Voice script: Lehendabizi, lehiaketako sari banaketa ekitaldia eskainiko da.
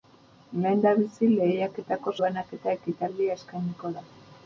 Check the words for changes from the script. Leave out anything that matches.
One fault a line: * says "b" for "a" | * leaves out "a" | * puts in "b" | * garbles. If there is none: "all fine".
* leaves out "sari"